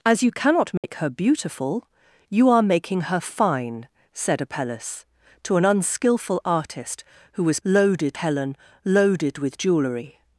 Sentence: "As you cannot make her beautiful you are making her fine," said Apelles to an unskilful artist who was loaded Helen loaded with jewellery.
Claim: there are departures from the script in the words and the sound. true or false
true